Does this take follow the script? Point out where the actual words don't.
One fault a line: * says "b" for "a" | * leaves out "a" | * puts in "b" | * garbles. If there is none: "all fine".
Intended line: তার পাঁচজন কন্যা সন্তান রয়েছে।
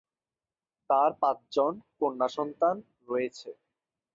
all fine